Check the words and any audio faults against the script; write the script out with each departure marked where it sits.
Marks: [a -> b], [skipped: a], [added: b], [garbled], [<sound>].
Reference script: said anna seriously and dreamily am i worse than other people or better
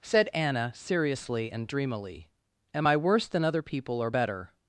said anna seriously and dreamily am i worse than other people or better